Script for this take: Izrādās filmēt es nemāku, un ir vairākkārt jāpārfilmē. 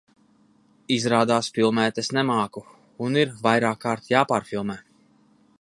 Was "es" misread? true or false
false